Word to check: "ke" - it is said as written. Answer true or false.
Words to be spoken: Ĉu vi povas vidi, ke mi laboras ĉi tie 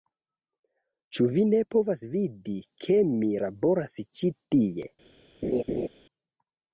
true